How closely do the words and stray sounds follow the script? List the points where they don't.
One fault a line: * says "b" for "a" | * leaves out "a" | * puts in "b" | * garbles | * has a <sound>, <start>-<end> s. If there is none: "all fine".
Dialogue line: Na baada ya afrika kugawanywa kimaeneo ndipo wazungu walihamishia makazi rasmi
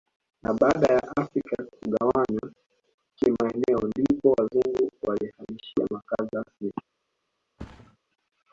* has a thud, 7.6-8.0 s